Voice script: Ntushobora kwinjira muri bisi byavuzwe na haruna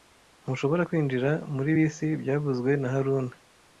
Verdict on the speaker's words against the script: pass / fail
pass